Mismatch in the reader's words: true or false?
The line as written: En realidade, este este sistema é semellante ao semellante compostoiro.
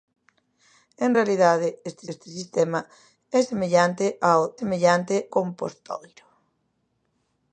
false